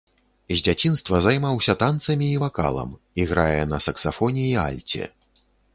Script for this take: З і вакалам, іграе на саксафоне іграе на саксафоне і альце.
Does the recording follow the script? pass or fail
fail